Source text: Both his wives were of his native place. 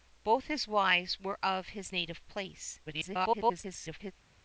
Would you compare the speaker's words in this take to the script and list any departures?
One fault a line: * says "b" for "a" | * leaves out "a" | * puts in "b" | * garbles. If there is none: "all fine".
* garbles